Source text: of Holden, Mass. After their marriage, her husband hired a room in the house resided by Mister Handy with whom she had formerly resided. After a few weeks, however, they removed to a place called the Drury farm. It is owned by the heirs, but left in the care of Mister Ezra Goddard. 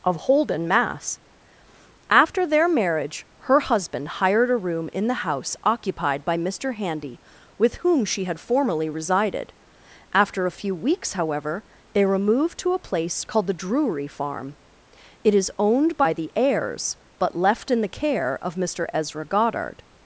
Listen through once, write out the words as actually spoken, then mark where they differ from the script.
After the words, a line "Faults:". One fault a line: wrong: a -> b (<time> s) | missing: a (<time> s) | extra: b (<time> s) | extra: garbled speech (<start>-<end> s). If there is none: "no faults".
of Holden, Mass. After their marriage, her husband hired a room in the house occupied by Mister Handy with whom she had formerly resided. After a few weeks, however, they removed to a place called the Drury farm. It is owned by the heirs, but left in the care of Mister Ezra Goddard.
Faults:
wrong: resided -> occupied (5.6 s)